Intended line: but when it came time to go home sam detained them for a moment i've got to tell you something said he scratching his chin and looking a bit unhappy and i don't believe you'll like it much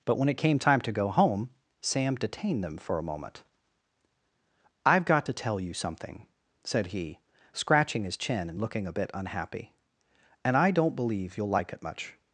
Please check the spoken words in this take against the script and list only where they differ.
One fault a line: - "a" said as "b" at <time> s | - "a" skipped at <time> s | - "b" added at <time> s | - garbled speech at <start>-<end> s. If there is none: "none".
none